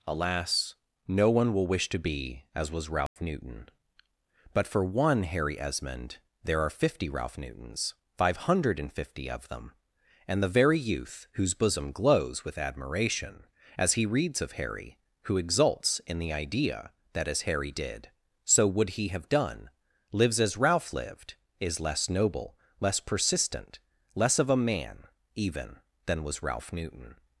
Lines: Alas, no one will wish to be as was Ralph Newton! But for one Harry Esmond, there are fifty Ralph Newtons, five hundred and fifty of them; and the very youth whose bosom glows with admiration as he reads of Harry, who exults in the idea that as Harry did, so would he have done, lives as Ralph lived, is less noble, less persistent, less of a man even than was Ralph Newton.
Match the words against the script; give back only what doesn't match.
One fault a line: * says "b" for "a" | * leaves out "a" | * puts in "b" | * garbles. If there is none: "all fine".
all fine